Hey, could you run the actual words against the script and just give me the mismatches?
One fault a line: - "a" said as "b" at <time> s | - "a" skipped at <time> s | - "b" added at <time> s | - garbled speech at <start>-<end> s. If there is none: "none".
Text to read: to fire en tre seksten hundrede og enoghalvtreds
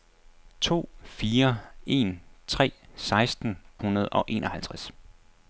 none